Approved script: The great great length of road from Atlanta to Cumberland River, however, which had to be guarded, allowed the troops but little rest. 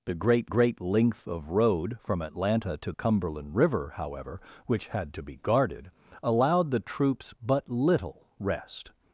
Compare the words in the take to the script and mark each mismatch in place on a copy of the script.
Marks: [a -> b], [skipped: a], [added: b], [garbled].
The great great length of road from Atlanta to Cumberland River, however, which had to be guarded, allowed the troops but little rest.